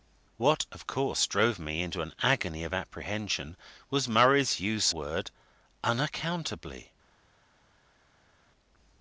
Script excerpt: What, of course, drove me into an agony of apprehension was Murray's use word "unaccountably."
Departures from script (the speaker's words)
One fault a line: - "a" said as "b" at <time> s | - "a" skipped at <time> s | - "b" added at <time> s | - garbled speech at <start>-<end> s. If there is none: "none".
none